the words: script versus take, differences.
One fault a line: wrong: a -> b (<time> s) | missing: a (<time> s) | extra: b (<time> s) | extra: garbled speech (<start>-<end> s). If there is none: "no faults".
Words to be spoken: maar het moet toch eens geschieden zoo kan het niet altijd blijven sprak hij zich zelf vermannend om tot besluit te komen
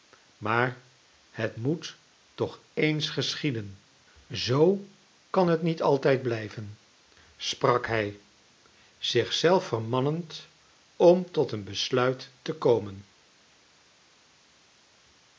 extra: een (11.5 s)